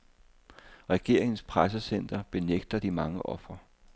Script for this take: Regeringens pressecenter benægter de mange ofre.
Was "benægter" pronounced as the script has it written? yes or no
yes